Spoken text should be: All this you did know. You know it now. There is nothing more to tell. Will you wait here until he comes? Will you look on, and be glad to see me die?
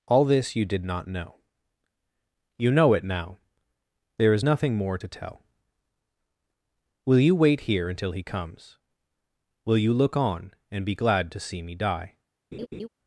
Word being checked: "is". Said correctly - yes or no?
yes